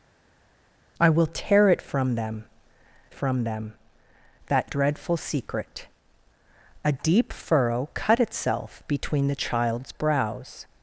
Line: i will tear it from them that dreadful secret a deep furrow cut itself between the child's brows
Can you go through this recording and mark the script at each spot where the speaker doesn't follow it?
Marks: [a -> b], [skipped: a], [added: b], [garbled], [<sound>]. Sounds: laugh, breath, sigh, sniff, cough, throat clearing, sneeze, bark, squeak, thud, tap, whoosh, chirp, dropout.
i will tear it from them [added: from them] that dreadful secret a deep furrow cut itself between the child's brows